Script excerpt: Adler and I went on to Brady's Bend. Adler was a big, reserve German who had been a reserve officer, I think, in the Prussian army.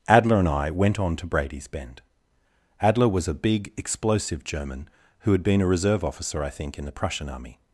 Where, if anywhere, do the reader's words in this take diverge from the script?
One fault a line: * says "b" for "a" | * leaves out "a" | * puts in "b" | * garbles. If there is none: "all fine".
* says "explosive" for "reserve"